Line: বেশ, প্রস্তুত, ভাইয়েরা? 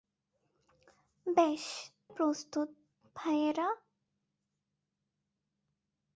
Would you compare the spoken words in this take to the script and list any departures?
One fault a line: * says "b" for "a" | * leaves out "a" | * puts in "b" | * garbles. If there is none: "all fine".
all fine